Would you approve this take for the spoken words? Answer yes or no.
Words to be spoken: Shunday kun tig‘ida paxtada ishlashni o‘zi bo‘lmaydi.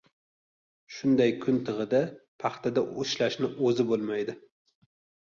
yes